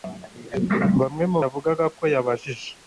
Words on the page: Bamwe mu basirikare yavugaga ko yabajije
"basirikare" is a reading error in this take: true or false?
true